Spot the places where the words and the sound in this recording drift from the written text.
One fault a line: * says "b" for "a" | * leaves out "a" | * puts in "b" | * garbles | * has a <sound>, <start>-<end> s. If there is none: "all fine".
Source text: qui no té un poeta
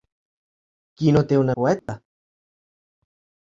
* has a dropout, 1.8-1.9 s